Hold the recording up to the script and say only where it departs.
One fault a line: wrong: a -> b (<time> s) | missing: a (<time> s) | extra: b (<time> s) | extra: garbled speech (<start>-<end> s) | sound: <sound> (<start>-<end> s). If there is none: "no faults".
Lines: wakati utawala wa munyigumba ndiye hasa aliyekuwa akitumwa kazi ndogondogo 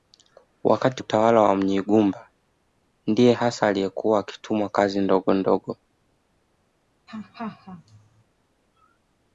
sound: laugh (7.1-8.2 s)